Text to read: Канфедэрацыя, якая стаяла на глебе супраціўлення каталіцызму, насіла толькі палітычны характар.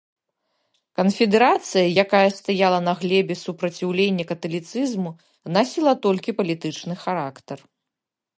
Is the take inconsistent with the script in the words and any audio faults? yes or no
no